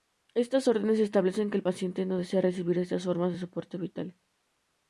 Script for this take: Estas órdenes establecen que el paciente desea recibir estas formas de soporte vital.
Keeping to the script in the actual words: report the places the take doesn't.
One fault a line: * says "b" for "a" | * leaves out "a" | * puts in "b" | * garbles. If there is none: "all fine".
* puts in "no"